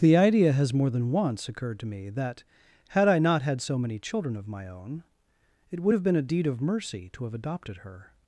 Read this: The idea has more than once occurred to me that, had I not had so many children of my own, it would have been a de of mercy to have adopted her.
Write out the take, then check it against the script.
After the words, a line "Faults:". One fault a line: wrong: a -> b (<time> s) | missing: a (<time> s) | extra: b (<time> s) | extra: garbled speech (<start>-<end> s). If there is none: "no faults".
The idea has more than once occurred to me that, had I not had so many children of my own, it would have been a deed of mercy to have adopted her.
Faults:
wrong: de -> deed (6.2 s)